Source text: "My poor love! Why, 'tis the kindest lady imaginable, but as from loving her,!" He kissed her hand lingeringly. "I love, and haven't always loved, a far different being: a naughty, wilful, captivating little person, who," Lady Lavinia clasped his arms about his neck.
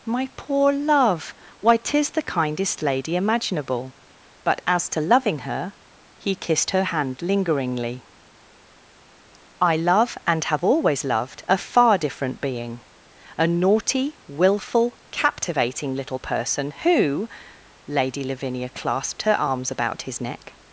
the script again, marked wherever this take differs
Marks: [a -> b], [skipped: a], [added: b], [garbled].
"My poor love! Why, 'tis the kindest lady imaginable, but as [from -> to] loving her,!" He kissed her hand lingeringly. "I love, and [haven't -> have] always loved, a far different being: a naughty, wilful, captivating little person, who," Lady Lavinia clasped [his -> her] arms about his neck.